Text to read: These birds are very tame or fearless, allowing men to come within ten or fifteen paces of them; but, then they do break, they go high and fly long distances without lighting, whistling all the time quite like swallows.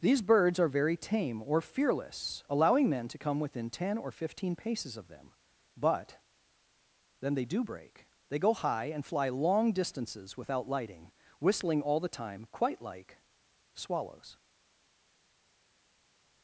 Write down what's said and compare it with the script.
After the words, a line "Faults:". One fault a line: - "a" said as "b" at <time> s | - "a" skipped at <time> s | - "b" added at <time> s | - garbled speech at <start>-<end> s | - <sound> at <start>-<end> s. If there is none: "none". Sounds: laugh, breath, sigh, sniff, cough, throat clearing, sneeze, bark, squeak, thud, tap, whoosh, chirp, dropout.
These birds are very tame or fearless, allowing men to come within ten or fifteen paces of them; but, then they do break, they go high and fly long distances without lighting, whistling all the time quite like swallows.
Faults:
none